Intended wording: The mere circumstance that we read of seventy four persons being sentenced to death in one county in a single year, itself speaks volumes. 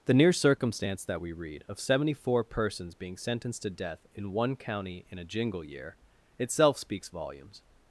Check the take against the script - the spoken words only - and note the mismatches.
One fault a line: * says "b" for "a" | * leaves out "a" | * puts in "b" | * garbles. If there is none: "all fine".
* says "near" for "mere"
* says "jingle" for "single"